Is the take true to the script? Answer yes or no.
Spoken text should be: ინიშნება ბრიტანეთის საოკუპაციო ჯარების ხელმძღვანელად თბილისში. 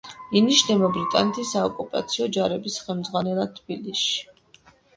yes